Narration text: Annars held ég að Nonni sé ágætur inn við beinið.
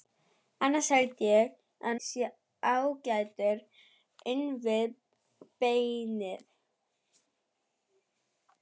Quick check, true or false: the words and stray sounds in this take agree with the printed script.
false